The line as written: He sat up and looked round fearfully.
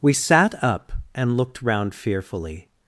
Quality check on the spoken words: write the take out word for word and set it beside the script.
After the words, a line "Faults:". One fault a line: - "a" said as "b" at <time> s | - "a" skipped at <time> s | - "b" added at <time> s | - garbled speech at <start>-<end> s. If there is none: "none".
We sat up and looked round fearfully.
Faults:
- "He" said as "We" at 0.0 s